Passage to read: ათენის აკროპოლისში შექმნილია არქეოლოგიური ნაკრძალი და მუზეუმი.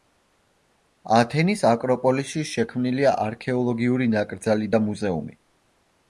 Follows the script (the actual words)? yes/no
yes